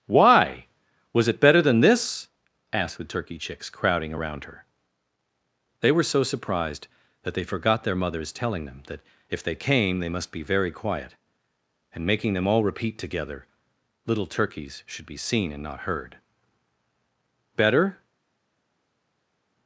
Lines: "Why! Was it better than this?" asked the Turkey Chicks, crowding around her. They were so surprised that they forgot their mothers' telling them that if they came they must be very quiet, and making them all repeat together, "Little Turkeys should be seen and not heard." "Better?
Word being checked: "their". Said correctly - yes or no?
yes